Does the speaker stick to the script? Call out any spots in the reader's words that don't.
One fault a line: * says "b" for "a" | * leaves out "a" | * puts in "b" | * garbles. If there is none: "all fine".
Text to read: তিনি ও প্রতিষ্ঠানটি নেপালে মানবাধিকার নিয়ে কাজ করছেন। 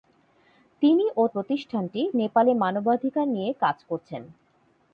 all fine